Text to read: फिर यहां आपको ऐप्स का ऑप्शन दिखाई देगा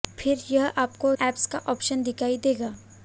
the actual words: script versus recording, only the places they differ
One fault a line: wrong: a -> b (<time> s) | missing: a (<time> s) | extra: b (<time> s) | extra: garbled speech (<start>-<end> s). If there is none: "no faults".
no faults